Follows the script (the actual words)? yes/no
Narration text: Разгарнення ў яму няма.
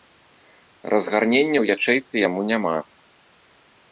no